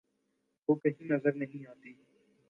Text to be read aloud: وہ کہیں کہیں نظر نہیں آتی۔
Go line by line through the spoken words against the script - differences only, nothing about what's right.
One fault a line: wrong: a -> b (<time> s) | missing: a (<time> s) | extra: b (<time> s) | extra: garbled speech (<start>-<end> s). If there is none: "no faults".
missing: کہیں (1.1 s)